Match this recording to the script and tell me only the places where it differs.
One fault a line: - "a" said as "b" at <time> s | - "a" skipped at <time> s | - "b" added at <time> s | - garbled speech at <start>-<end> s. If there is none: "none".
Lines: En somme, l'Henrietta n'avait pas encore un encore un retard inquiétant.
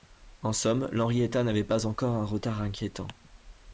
- "encore un" skipped at 2.2 s